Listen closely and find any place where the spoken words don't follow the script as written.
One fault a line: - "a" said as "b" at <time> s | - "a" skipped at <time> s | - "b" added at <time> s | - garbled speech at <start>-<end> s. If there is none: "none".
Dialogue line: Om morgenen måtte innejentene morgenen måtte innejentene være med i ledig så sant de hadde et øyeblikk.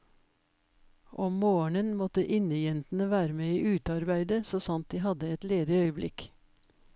- "morgenen måtte innejentene" skipped at 3.1 s
- "ledig" said as "utearbeidet" at 3.8 s
- "ledig" added at 5.4 s